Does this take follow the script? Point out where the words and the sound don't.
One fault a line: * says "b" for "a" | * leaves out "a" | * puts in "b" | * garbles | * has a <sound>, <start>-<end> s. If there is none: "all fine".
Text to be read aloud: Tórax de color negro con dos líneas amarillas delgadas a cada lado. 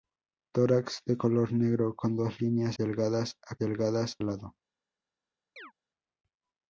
* leaves out "amarillas"
* says "delgadas" for "cada"
* has a chirp, 5.6-5.7 s